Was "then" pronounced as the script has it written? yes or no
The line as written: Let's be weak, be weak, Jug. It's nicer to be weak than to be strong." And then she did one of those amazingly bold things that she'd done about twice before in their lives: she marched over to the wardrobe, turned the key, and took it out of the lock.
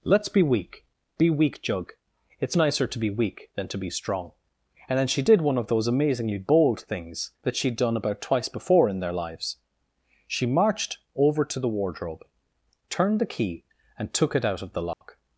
yes